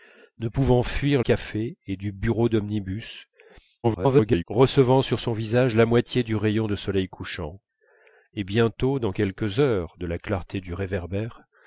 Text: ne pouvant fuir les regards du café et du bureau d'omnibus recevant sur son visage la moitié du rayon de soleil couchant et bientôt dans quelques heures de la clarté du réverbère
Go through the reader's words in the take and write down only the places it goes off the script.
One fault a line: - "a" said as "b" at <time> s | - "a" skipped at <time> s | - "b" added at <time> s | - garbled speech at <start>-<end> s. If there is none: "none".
- "les regards du" skipped at 1.2 s
- garbled speech at 3.8-4.4 s